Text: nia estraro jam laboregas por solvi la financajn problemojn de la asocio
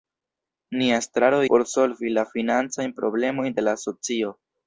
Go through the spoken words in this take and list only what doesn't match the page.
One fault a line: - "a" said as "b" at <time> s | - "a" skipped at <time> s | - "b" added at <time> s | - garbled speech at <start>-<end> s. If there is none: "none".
- "jam laboregas" skipped at 1.4 s